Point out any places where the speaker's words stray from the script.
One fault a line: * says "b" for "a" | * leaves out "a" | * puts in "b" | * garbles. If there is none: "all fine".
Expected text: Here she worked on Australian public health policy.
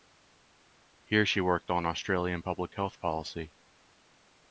all fine